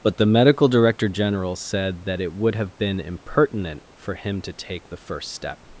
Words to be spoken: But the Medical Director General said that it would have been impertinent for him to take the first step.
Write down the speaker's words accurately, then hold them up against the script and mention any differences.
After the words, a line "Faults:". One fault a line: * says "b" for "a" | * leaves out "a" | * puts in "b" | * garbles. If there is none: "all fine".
But the Medical Director General said that it would have been impertinent for him to take the first step.
Faults:
all fine